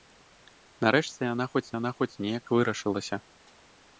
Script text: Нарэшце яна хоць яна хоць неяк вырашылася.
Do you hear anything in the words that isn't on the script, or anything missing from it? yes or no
no